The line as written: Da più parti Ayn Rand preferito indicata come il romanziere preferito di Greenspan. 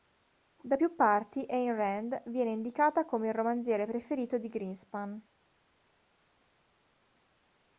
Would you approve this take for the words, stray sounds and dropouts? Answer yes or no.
no